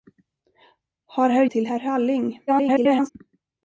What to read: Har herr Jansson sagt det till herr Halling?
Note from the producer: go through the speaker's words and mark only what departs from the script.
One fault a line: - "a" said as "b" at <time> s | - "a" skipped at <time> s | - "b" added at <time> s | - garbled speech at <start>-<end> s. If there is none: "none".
- "Jansson sagt det" skipped at 1.4 s
- garbled speech at 2.5-3.1 s